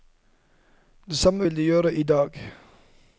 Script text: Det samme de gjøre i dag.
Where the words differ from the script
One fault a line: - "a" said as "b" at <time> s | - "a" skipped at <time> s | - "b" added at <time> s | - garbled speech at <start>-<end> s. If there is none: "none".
- "vil" added at 1.4 s